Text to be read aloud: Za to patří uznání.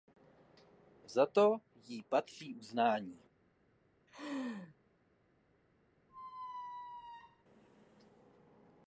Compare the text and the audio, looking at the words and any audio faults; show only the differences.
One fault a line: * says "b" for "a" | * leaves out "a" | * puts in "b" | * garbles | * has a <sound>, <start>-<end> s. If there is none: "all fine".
* puts in "jí"
* has a laugh, 4.1-4.8 s
* has a squeak, 6.1-7.4 s